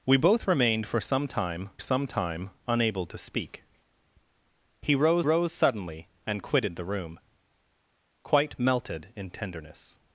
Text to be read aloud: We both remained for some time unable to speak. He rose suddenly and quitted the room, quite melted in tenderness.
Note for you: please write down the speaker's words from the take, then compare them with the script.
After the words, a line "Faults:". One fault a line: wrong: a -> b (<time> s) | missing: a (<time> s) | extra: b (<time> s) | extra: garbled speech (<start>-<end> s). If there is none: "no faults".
We both remained for some time some time unable to speak. He rose rose suddenly and quitted the room, quite melted in tenderness.
Faults:
extra: some time (1.8 s)
extra: rose (5.2 s)